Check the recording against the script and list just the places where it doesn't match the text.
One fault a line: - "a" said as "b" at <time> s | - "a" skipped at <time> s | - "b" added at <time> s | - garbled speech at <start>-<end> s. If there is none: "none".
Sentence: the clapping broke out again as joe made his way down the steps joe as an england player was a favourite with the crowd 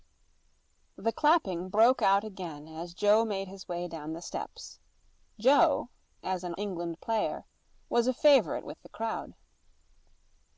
none